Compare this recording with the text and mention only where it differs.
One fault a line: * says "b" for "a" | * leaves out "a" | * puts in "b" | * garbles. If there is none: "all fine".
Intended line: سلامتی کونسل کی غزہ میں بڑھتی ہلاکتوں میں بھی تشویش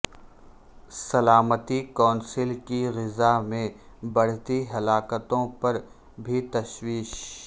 * says "پر" for "میں"